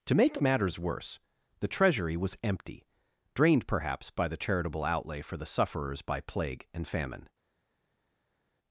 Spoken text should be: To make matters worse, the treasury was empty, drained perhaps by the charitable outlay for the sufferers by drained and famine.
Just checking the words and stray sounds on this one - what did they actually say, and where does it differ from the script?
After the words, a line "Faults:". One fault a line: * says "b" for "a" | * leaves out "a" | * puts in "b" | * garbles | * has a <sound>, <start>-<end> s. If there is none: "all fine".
To make matters worse, the treasury was empty, drained perhaps by the charitable outlay for the sufferers by plague and famine.
Faults:
* says "plague" for "drained"